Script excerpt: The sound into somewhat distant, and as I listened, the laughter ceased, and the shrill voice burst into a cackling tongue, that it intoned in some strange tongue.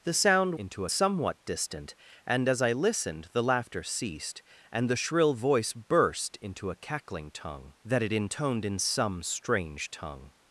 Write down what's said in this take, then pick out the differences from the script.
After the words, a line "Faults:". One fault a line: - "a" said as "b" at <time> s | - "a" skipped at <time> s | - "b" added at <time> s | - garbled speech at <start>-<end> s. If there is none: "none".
The sound into somewhat distant, and as I listened, the laughter ceased, and the shrill voice burst into a cackling tongue, that it intoned in some strange tongue.
Faults:
none